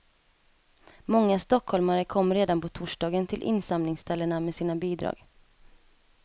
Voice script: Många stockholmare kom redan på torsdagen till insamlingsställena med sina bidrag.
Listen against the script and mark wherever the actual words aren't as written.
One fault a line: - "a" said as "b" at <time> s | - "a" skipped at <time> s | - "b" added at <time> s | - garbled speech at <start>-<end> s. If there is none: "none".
none